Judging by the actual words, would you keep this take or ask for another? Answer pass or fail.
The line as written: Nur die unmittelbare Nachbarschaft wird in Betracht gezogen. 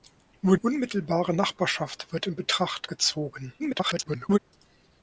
fail